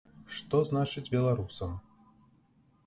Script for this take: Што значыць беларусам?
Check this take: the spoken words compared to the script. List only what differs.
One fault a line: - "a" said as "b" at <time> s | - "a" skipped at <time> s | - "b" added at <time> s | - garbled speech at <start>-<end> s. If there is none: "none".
none